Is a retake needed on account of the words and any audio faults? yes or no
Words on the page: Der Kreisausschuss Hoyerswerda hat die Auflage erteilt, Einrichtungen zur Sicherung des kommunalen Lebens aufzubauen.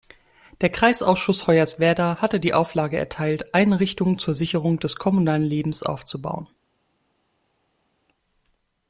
yes